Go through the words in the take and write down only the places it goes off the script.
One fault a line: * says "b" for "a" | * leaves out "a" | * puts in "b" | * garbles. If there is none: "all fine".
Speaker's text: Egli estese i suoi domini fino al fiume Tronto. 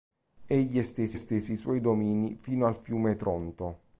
* puts in "estese"